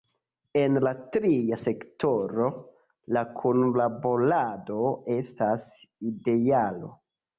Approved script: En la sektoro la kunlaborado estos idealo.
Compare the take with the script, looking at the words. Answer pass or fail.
fail